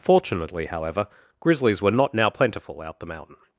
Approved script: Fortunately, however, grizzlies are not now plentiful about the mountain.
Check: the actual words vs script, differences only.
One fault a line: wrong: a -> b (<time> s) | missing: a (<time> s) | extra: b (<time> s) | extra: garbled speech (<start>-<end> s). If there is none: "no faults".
wrong: are -> were (1.8 s)
wrong: about -> out (2.8 s)